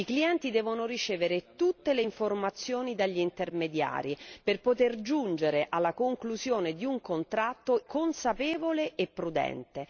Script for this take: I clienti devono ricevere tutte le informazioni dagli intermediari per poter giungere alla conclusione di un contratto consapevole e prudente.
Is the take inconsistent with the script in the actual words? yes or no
no